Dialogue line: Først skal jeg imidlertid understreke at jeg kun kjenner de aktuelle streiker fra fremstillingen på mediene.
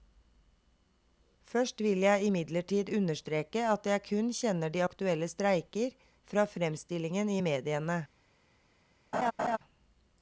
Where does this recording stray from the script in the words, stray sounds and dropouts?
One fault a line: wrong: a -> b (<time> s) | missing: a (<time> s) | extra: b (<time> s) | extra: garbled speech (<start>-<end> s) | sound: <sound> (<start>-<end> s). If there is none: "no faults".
wrong: skal -> vil (1.8 s)
wrong: på -> i (7.3 s)
sound: laugh (9.1-9.6 s)